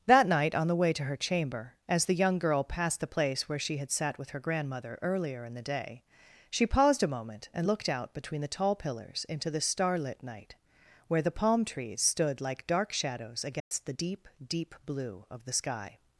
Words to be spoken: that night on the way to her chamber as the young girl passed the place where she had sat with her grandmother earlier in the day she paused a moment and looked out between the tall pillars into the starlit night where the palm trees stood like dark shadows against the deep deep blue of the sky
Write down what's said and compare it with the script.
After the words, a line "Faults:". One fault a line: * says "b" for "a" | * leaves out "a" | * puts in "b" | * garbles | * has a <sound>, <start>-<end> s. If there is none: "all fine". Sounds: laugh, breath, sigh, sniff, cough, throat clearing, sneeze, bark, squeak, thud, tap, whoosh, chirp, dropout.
that night on the way to her chamber as the young girl passed the place where she had sat with her grandmother earlier in the day she paused a moment and looked out between the tall pillars into the starlit night where the palm trees stood like dark shadows against the deep deep blue of the sky
Faults:
* has a dropout, 13.6-13.7 s